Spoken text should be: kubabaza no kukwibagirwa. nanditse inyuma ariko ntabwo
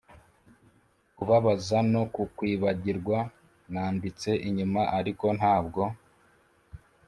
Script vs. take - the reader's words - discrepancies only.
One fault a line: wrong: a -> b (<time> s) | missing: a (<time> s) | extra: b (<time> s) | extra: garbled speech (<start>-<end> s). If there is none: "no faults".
no faults